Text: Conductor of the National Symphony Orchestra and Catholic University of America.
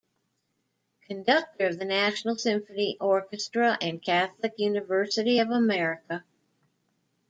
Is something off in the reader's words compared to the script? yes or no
no